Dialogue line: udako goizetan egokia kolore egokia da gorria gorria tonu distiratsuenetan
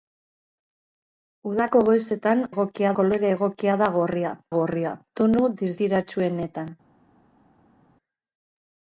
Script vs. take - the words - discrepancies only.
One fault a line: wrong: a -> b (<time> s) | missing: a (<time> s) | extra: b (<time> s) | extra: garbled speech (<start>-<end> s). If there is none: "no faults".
no faults